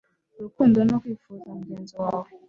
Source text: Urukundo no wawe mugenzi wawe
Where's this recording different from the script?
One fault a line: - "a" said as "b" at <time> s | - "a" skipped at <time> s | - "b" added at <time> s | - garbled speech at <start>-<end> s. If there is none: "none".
- "wawe" said as "kwifuza" at 1.0 s